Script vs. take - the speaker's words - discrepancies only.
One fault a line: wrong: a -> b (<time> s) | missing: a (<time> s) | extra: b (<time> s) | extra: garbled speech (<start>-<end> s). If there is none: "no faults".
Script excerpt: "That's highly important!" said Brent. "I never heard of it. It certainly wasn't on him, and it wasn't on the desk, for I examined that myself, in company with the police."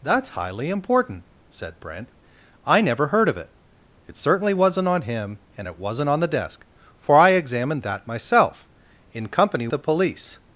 missing: with (9.7 s)